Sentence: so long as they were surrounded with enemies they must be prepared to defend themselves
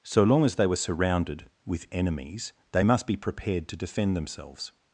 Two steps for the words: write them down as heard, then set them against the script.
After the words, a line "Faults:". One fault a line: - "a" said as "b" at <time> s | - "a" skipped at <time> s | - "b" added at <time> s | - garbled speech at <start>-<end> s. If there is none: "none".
so long as they were surrounded with enemies they must be prepared to defend themselves
Faults:
none